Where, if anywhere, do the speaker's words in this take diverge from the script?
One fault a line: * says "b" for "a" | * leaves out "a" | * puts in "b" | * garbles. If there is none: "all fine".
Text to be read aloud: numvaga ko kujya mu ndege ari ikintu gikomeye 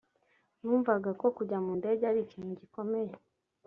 all fine